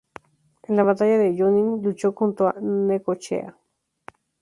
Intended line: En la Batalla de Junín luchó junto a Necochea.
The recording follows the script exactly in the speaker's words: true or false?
true